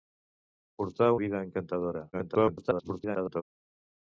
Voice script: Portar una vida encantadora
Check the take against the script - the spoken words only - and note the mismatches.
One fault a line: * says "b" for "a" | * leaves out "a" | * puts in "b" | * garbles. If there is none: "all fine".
* leaves out "una"
* garbles